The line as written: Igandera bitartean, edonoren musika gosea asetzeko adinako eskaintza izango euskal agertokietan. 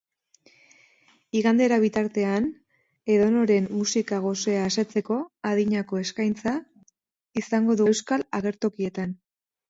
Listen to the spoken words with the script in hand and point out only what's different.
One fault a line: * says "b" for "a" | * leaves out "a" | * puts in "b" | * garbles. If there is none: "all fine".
all fine